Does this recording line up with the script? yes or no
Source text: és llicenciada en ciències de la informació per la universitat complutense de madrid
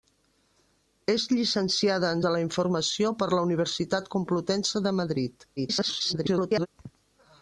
no